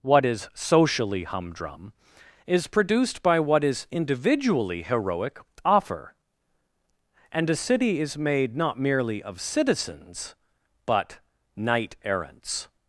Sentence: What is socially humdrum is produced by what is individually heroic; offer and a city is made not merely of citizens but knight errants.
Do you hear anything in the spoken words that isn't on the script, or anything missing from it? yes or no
no